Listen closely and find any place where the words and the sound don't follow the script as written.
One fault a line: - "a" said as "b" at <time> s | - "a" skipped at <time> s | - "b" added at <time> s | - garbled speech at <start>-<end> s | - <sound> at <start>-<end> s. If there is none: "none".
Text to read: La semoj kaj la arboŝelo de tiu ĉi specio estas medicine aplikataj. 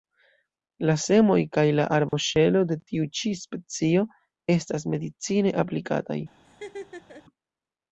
- dropout at 2.1-2.1 s
- laugh at 6.4-7.3 s